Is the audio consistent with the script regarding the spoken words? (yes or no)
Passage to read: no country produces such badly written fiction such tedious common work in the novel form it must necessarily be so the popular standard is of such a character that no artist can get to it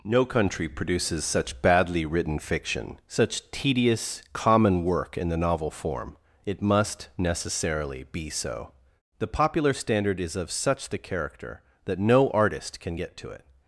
no